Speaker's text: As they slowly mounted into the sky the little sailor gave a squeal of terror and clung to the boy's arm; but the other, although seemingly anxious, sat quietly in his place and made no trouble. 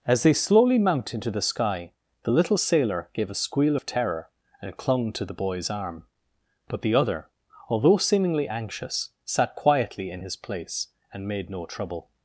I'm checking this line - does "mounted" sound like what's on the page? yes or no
no